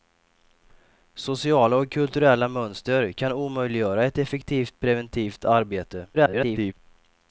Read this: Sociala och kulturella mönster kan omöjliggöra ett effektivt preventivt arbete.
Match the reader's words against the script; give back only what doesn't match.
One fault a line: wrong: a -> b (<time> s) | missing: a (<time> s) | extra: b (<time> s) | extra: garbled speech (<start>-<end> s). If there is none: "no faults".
extra: garbled speech (6.1-6.7 s)